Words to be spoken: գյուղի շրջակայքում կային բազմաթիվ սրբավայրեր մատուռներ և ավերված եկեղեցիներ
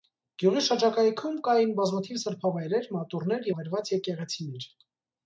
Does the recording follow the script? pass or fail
fail